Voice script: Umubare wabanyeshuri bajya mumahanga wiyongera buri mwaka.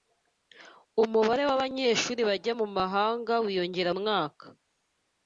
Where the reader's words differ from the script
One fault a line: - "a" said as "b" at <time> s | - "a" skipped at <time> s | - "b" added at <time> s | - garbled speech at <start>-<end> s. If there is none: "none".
- "buri" skipped at 3.9 s